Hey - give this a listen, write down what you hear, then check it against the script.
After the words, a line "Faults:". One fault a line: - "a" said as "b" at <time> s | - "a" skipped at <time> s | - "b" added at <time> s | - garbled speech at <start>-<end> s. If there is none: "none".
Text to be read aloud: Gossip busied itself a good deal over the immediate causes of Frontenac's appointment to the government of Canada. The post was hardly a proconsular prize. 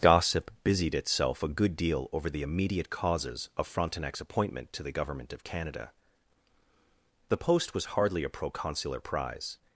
Gossip busied itself a good deal over the immediate causes of Frontenac's appointment to the government of Canada. The post was hardly a proconsular prize.
Faults:
none